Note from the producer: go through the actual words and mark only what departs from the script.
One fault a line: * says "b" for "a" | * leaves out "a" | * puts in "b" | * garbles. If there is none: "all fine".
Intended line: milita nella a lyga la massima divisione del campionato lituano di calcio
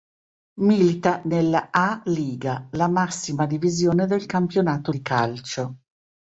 * leaves out "lituano"